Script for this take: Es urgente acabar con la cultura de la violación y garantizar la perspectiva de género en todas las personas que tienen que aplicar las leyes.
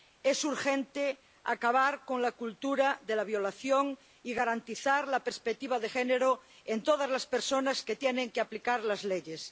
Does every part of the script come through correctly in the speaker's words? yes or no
yes